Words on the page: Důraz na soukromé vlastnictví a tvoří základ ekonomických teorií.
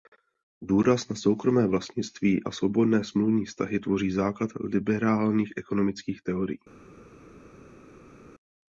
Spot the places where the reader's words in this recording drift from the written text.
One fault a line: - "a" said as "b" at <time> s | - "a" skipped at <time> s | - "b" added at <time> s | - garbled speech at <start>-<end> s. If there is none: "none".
- "svobodné smluvní vztahy" added at 2.5 s
- "liberálních" added at 4.6 s